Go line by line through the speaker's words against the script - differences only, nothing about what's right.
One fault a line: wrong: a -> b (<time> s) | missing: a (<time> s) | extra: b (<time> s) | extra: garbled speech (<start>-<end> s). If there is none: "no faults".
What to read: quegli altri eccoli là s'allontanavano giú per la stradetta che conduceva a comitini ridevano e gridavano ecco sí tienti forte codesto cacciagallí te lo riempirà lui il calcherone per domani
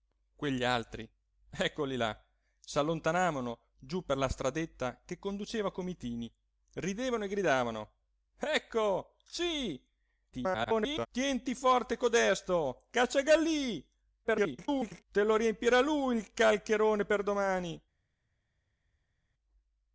extra: garbled speech (10.3-11.1 s)
extra: garbled speech (14.2-15.0 s)